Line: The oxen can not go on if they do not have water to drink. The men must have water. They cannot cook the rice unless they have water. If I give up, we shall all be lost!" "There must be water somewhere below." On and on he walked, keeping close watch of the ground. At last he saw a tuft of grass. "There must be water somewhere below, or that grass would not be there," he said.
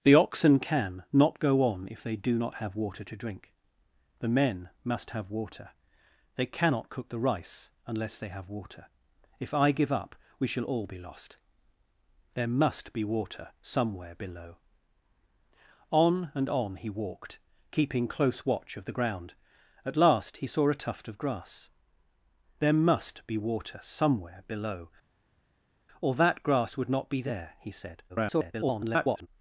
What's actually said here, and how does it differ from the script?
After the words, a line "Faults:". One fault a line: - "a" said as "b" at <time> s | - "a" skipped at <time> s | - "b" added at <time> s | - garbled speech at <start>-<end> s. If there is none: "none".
The oxen can not go on if they do not have water to drink. The men must have water. They cannot cook the rice unless they have water. If I give up, we shall all be lost!" "There must be water somewhere below." On and on he walked, keeping close watch of the ground. At last he saw a tuft of grass. "There must be water somewhere below, or that grass would not be there," he said. [garbled]
Faults:
- garbled speech at 28.1-29.3 s